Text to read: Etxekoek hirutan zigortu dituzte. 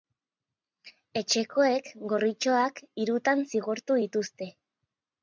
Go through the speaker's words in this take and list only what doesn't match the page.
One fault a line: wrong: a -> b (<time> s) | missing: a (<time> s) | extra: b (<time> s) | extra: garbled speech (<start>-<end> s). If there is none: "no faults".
extra: gorritxoak (2.1 s)